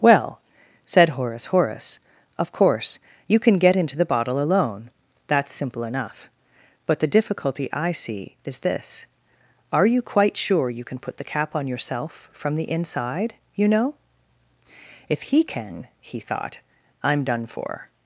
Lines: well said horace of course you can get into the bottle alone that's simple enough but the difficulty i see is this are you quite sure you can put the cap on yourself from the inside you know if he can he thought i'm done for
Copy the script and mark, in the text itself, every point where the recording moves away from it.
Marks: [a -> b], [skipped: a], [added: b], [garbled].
well said horace [added: horace] of course you can get into the bottle alone that's simple enough but the difficulty i see is this are you quite sure you can put the cap on yourself from the inside you know if he can he thought i'm done for